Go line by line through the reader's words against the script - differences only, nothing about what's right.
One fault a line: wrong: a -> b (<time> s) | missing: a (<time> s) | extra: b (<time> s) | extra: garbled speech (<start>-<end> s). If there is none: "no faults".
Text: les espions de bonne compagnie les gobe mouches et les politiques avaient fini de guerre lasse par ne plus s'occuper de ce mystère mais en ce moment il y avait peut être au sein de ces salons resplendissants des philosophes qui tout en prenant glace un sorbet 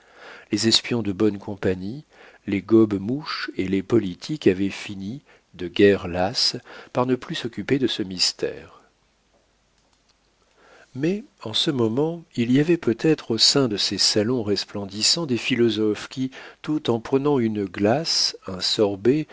extra: une (17.4 s)